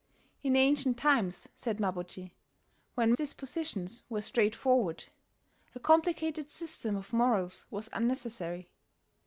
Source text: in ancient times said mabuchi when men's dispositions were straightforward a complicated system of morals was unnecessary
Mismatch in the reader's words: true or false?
true